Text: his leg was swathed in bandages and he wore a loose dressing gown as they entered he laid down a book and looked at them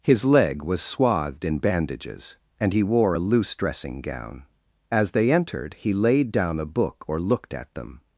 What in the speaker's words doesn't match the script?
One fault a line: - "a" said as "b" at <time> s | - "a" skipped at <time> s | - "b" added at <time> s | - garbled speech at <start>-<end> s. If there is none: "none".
- "and" said as "or" at 7.1 s